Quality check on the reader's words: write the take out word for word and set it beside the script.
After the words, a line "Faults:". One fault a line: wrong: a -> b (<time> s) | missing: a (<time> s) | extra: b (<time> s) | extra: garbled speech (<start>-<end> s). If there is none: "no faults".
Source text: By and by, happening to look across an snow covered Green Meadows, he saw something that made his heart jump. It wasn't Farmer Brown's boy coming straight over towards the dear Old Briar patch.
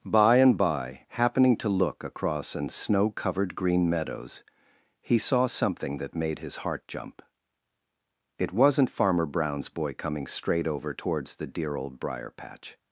By and by, happening to look across an snow covered Green Meadows, he saw something that made his heart jump. It wasn't Farmer Brown's boy coming straight over towards the dear Old Briar patch.
Faults:
no faults